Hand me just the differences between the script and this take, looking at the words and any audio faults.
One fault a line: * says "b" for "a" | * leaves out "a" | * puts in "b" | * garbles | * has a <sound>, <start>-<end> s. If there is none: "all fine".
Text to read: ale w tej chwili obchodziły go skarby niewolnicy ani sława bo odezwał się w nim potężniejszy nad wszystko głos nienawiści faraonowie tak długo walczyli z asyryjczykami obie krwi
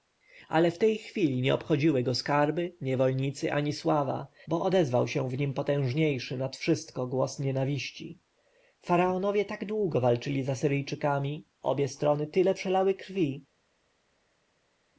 * puts in "nie"
* puts in "strony tyle przelały"